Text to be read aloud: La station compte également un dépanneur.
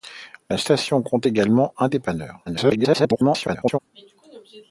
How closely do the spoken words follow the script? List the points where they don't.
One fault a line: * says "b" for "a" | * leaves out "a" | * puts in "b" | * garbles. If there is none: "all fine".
* garbles